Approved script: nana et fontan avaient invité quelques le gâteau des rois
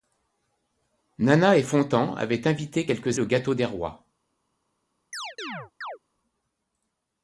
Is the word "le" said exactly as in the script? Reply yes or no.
yes